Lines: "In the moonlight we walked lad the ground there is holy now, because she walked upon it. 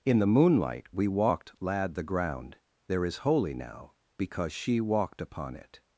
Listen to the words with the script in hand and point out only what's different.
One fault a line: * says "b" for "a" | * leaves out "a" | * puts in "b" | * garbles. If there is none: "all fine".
all fine